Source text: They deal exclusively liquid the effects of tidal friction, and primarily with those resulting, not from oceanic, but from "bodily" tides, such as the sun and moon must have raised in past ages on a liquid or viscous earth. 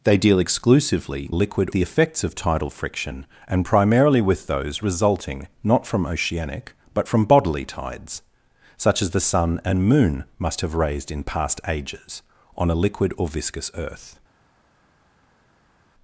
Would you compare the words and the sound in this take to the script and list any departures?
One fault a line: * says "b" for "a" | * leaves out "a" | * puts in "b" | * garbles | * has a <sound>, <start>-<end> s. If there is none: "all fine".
all fine